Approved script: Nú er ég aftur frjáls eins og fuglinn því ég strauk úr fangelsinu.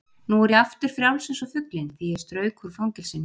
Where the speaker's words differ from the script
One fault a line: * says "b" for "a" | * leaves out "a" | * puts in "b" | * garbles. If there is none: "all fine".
all fine